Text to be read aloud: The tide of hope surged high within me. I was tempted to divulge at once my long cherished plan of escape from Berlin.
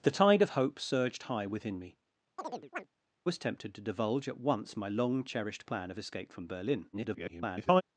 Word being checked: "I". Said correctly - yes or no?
no